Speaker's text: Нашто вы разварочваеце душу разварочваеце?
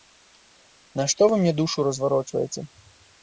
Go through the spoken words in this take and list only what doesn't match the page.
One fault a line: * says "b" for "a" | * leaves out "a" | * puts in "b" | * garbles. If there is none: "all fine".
* says "мне" for "разварочваеце"